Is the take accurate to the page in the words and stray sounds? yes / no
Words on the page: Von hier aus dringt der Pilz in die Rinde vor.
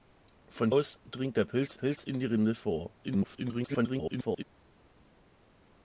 no